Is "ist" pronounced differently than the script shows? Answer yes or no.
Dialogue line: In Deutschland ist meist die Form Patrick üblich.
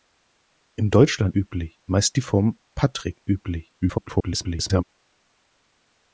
yes